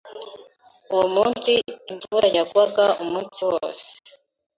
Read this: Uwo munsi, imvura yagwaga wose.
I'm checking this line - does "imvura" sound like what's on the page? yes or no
yes